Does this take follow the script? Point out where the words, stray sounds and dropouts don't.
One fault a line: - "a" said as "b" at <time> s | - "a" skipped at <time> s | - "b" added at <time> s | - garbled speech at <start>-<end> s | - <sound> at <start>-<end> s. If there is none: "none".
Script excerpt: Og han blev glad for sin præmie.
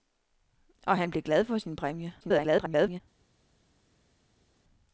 - garbled speech at 2.2-3.0 s